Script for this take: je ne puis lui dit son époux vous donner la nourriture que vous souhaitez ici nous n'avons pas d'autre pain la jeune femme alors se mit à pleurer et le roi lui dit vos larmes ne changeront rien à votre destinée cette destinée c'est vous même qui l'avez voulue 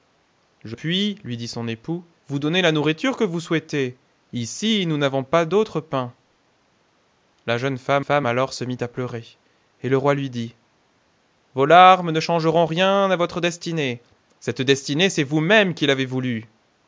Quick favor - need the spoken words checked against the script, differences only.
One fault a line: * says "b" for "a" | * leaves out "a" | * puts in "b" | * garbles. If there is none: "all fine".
* leaves out "ne"
* puts in "femme"